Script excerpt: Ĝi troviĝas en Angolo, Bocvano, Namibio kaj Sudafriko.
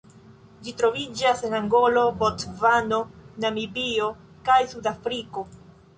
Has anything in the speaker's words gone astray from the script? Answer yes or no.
no